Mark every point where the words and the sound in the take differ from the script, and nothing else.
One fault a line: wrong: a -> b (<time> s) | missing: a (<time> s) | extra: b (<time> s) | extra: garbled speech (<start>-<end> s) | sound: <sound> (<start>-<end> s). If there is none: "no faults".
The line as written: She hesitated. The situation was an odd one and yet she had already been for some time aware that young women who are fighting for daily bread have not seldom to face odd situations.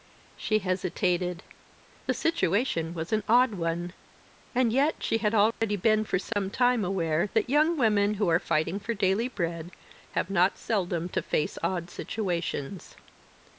sound: dropout (5.5-5.6 s)
sound: dropout (6.3-6.4 s)